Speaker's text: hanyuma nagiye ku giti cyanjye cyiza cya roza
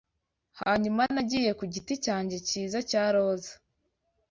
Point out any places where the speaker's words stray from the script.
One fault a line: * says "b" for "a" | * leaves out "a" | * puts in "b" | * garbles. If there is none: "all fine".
all fine